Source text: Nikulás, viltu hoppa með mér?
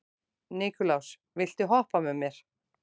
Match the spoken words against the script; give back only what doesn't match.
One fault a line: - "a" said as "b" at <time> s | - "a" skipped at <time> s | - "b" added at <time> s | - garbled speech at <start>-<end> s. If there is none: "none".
none